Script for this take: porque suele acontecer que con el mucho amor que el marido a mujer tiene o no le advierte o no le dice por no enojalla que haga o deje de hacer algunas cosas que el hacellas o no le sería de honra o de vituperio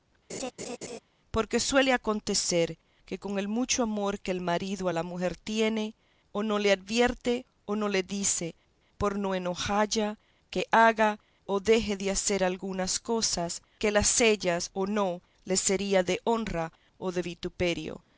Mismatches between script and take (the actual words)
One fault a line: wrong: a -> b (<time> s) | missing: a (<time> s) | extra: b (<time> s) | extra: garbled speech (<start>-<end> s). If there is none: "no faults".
extra: la (4.9 s)